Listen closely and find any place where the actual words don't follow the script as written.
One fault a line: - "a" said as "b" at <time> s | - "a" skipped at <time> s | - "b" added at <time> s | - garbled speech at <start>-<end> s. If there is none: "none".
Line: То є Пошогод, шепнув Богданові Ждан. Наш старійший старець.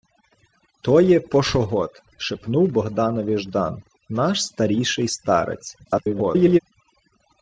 - garbled speech at 5.8-6.6 s